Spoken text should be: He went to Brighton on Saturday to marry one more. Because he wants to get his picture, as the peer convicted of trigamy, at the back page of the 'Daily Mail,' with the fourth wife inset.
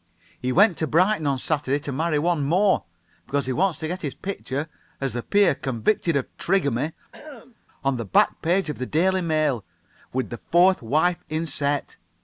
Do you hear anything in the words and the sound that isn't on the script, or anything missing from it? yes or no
yes